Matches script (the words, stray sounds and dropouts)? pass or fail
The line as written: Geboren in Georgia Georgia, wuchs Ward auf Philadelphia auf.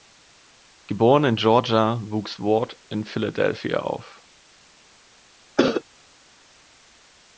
fail